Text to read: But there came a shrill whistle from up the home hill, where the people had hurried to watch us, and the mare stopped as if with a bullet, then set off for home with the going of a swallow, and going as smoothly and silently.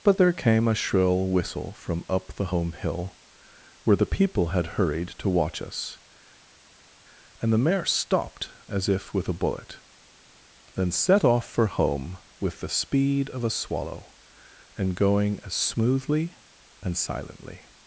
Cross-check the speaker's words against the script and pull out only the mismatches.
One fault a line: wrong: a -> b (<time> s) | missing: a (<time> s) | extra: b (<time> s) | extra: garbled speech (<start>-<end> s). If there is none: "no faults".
wrong: going -> speed (12.7 s)